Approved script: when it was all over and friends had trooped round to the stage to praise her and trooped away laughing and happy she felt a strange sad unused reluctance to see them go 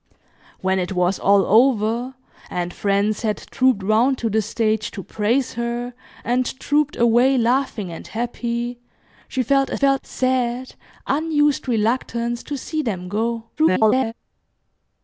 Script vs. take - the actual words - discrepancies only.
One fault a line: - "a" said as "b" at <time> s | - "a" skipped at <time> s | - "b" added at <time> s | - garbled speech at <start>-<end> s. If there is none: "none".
- "strange" said as "felt" at 9.8 s
- garbled speech at 13.6-14.1 s